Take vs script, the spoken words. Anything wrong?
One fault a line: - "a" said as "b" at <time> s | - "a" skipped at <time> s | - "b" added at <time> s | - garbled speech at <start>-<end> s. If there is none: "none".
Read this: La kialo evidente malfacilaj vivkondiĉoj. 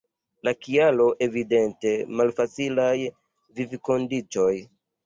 none